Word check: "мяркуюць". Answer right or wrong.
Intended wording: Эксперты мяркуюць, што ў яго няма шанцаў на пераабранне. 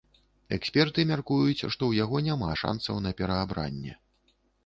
right